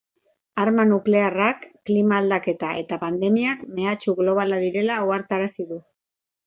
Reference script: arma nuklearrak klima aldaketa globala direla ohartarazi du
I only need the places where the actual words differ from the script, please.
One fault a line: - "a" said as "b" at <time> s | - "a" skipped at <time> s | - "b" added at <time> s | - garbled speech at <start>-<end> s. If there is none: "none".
- "eta pandemiak mehatxu" added at 2.8 s